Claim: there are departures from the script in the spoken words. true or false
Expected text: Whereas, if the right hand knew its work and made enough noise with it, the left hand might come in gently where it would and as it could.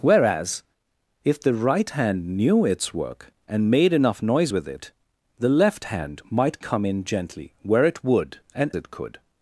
true